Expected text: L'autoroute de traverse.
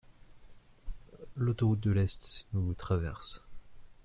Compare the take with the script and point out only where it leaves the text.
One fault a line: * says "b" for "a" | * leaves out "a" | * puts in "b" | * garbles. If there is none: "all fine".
* puts in "l'Est nous"